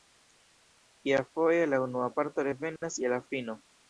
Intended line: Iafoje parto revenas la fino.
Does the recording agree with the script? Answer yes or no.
no